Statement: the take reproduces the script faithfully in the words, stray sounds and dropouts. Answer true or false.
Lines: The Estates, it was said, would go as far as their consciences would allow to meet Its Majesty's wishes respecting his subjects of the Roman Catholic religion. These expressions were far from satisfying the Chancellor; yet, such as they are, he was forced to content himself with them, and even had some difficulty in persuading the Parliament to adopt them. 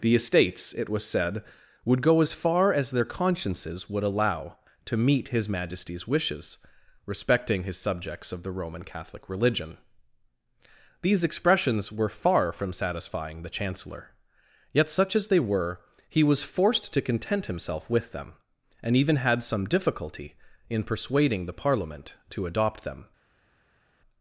false